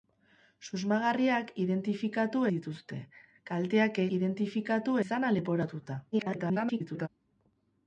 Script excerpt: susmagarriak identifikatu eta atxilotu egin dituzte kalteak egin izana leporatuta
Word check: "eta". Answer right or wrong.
wrong